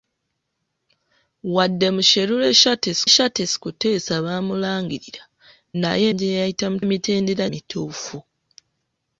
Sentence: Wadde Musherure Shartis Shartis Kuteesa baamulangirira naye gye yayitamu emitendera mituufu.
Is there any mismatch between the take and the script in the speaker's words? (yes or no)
no